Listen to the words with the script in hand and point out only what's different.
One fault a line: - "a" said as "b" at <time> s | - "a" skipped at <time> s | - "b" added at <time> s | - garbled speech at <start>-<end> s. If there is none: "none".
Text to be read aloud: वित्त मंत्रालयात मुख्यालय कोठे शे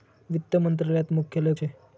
- "कोठे" skipped at 1.5 s